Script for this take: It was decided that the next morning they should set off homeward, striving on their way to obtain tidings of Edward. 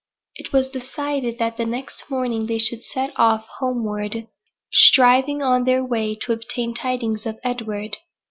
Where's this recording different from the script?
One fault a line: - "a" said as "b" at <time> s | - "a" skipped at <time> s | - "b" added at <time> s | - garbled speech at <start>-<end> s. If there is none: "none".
none